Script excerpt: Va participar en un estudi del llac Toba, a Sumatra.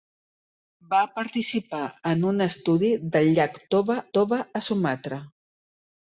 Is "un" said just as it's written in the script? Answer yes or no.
yes